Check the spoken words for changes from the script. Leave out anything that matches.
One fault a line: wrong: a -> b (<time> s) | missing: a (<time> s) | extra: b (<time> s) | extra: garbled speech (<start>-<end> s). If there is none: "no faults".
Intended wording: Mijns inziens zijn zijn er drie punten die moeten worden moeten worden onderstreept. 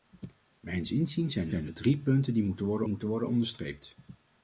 no faults